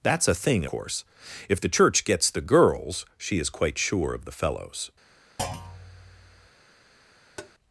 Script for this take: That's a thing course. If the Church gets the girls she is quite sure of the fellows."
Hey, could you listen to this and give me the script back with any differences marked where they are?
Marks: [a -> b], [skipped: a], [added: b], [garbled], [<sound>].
That's a thing course. If the Church gets the girls she is quite sure of the fellows." [thud] [tap]